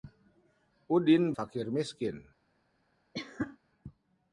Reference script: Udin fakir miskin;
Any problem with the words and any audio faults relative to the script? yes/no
yes